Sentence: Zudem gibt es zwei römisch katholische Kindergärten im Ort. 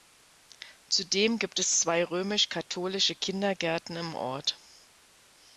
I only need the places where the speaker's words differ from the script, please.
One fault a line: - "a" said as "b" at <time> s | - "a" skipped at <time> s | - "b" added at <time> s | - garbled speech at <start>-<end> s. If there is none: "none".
none